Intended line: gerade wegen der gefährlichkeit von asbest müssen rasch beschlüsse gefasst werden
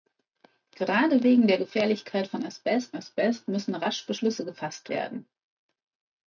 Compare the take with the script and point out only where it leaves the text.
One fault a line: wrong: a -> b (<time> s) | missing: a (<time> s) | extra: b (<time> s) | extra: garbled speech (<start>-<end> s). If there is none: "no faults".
extra: asbest (2.9 s)